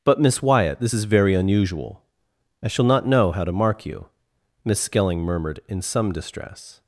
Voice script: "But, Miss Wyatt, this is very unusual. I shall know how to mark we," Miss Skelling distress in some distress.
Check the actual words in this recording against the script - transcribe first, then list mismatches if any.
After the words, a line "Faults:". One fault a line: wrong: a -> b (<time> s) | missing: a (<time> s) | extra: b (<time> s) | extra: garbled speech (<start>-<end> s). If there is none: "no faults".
"But, Miss Wyatt, this is very unusual. I shall not know how to mark you," Miss Skelling murmured in some distress.
Faults:
extra: not (2.8 s)
wrong: we -> you (3.8 s)
wrong: distress -> murmured (5.2 s)